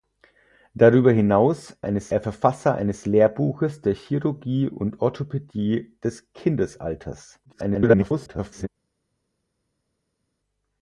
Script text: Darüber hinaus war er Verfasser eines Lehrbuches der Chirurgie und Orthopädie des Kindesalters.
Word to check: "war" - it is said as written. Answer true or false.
false